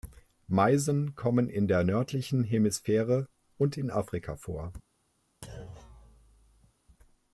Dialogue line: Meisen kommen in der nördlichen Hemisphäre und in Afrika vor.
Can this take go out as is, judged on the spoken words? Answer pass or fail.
pass